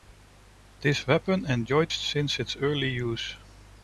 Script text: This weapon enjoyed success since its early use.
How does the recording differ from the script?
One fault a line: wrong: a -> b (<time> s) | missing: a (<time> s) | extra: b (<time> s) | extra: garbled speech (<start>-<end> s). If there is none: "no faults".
missing: success (1.9 s)